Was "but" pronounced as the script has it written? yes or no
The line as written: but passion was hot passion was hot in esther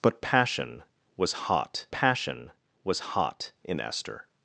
yes